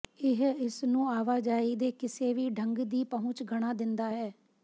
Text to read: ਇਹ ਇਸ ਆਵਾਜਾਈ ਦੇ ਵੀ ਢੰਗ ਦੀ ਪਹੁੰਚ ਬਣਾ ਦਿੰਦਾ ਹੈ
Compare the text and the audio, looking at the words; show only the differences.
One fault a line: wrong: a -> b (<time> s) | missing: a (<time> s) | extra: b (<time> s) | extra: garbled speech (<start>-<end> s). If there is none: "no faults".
extra: ਨੂੰ (0.8 s)
extra: ਕਿਸੇ (1.9 s)